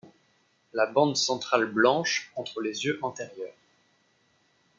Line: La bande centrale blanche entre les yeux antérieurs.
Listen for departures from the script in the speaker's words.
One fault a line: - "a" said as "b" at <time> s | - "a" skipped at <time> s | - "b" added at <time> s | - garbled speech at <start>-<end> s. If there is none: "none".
none